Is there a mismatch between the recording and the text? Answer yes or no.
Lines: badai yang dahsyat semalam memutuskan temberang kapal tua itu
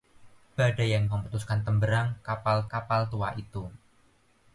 yes